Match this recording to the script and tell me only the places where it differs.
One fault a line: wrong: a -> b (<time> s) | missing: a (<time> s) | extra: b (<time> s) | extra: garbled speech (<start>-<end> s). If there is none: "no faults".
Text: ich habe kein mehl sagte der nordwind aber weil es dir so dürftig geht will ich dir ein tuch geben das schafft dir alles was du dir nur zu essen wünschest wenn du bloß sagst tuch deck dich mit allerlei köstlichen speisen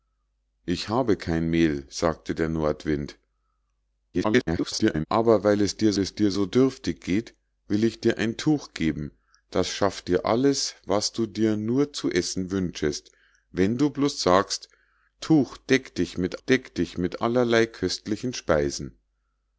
extra: garbled speech (4.1-5.1 s)
extra: es dir (6.0 s)
extra: deck dich mit (16.4 s)